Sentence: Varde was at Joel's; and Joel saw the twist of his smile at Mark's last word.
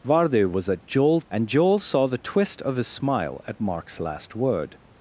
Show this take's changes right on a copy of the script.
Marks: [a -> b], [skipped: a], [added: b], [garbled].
Varde was at Joel's; and Joel saw the twist of his smile at Mark's last word.